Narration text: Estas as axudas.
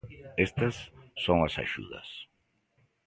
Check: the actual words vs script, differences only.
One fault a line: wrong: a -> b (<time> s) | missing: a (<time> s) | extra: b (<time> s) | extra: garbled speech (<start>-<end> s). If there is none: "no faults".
extra: son (1.2 s)